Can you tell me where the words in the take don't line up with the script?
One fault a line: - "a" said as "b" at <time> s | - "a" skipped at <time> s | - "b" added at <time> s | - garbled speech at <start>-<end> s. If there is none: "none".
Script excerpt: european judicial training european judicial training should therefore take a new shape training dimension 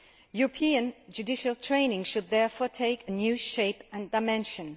- "european judicial training" skipped at 2.0 s
- "training" said as "and" at 3.9 s